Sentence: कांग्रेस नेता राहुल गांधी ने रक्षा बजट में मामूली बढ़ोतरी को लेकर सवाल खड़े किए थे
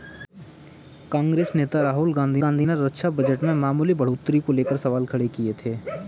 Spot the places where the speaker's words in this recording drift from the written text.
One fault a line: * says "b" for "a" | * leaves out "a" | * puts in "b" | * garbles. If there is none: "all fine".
* puts in "गांधी"